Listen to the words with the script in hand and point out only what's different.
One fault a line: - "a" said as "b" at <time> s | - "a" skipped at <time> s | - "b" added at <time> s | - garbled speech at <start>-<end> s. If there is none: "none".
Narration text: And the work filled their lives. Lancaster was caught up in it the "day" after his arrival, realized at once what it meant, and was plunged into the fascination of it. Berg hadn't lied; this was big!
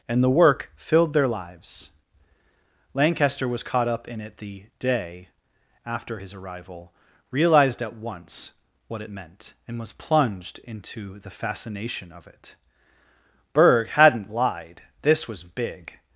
none